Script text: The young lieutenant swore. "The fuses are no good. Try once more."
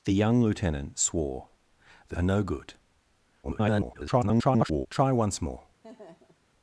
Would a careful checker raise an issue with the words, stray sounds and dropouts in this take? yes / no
yes